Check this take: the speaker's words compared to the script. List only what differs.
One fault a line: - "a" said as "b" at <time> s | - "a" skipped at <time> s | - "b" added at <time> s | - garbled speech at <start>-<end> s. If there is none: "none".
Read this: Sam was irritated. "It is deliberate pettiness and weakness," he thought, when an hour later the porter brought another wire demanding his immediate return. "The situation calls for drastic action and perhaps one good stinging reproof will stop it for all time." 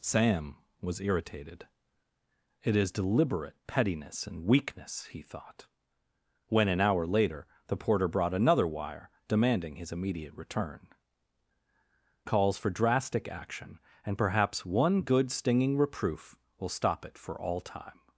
- "The situation" skipped at 10.9 s